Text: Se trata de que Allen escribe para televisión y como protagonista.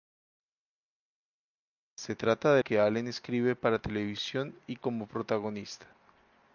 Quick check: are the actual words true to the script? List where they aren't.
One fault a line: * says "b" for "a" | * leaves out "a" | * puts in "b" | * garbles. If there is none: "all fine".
all fine